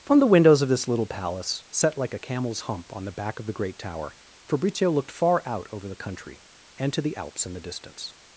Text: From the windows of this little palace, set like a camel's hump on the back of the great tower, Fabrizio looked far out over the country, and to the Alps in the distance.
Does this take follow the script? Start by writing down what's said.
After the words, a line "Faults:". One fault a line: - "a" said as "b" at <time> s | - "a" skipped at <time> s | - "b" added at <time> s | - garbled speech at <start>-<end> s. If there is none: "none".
From the windows of this little palace, set like a camel's hump on the back of the great tower, Fabrizio looked far out over the country, and to the Alps in the distance.
Faults:
none